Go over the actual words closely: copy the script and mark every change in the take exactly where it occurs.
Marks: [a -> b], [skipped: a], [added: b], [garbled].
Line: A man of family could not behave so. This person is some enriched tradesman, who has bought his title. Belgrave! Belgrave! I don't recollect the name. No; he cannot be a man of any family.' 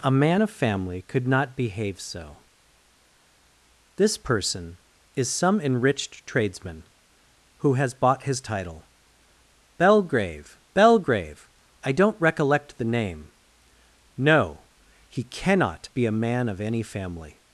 A man of family could not behave so. This person is some enriched tradesman, who has bought his title. Belgrave! Belgrave! I don't recollect the name. No; he cannot be a man of any family.'